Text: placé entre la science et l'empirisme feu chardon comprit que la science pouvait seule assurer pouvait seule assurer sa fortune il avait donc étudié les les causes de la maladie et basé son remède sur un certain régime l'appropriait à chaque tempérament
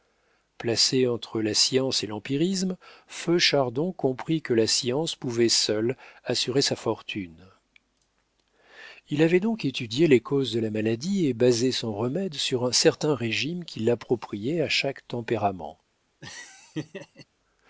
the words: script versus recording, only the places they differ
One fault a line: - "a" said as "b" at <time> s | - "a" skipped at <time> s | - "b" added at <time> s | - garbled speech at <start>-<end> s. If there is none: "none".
- "pouvait seule assurer" skipped at 6.6 s
- "les" skipped at 10.2 s
- "qui" added at 13.6 s